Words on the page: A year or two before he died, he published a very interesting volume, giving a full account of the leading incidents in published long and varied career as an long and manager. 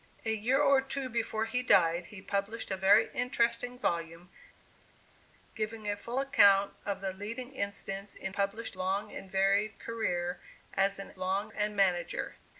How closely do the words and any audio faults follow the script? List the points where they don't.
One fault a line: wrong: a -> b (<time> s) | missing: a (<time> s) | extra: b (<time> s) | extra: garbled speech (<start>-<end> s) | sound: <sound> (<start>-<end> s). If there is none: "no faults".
no faults